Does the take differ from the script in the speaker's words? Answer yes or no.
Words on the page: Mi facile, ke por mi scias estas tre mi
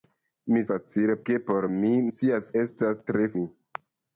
no